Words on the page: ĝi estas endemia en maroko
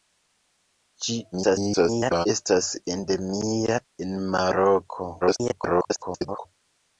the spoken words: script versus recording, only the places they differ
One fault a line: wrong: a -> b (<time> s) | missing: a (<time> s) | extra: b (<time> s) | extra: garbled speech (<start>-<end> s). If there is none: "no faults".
extra: garbled speech (1.3-2.3 s)
extra: garbled speech (5.2-6.5 s)